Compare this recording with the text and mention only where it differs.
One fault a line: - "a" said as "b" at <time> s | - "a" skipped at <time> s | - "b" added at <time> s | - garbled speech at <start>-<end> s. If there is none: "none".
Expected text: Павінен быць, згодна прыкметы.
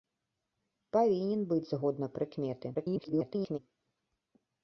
- garbled speech at 2.7-3.6 s